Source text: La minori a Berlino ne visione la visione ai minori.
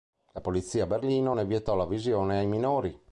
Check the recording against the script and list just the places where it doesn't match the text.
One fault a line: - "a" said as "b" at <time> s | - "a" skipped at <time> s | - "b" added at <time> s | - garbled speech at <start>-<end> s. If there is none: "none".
- "minori" said as "polizia" at 0.4 s
- "visione" said as "vietò" at 1.4 s